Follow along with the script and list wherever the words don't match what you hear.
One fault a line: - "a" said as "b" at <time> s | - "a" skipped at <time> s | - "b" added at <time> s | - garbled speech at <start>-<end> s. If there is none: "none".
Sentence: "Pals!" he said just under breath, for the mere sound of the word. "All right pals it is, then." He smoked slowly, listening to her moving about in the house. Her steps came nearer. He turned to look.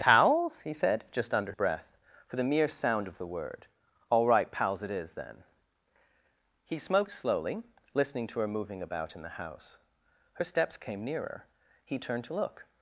none